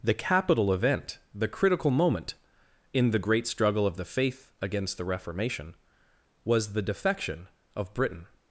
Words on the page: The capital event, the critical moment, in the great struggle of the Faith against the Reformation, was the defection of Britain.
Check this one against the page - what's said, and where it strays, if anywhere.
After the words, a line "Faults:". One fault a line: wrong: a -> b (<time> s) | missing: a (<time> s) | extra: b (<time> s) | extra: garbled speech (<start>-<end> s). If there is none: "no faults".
The capital event, the critical moment, in the great struggle of the Faith against the Reformation, was the defection of Britain.
Faults:
no faults